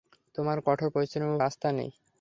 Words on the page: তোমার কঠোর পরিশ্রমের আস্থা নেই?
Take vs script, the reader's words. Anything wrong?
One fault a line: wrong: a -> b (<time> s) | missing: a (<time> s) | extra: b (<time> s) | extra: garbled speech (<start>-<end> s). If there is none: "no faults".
no faults